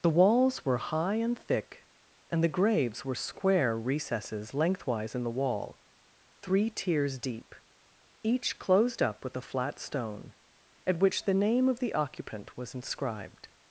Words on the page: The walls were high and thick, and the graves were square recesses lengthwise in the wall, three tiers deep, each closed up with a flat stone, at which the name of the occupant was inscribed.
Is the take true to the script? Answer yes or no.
yes